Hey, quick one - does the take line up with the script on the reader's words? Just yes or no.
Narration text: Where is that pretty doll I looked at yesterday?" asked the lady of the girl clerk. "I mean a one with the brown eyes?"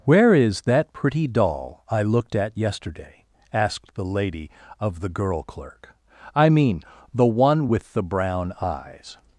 no